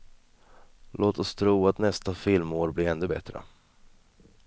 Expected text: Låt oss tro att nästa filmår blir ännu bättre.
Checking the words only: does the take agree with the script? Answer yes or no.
yes